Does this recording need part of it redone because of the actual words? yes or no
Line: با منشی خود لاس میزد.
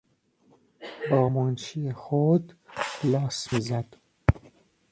no